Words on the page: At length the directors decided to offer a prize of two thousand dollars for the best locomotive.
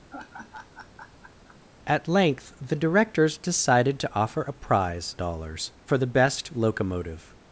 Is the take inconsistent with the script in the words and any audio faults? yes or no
yes